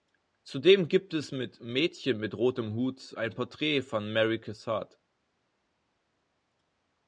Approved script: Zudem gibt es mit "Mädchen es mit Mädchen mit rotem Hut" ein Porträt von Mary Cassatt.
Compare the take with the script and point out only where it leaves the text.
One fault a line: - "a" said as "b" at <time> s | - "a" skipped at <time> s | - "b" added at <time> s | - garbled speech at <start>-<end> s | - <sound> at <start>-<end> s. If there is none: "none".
- "es mit Mädchen" skipped at 2.2 s